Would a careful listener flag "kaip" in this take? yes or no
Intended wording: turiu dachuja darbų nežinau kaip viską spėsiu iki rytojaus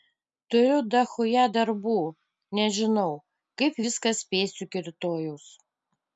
no